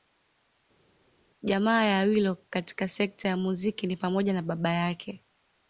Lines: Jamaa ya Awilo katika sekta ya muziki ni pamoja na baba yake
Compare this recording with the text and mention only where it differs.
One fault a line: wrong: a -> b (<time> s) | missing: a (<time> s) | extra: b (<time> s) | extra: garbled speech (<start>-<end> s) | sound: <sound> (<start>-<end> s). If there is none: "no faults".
no faults